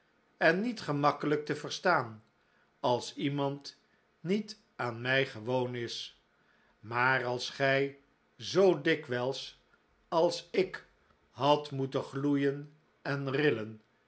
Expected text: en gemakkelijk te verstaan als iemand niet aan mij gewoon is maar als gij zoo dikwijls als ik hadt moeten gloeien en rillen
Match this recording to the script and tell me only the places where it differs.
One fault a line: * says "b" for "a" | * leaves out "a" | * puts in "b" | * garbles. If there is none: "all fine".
* puts in "niet"